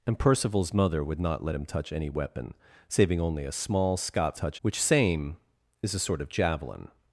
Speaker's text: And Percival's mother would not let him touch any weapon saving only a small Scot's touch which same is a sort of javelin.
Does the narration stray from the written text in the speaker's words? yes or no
no